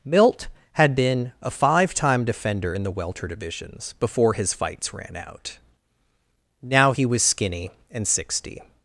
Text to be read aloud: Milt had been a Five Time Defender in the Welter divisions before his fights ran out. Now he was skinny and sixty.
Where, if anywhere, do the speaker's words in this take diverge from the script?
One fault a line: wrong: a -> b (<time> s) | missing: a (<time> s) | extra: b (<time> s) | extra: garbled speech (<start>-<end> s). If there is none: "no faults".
no faults